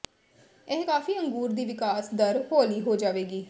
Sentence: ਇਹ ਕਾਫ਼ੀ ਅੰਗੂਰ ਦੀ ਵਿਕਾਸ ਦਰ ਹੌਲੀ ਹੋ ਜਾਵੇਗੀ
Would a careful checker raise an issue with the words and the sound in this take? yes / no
no